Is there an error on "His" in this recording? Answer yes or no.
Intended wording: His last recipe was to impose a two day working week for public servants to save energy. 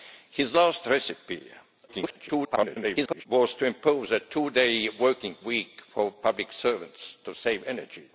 no